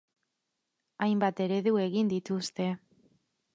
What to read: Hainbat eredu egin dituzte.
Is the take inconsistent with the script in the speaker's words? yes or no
no